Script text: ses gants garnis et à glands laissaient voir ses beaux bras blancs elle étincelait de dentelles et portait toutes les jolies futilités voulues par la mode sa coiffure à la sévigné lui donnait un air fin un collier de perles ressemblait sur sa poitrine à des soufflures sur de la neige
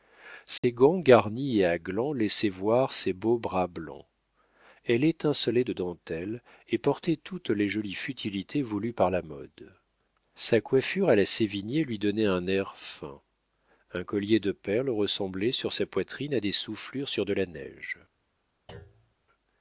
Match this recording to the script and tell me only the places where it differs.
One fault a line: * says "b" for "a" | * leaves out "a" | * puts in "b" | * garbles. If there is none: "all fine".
all fine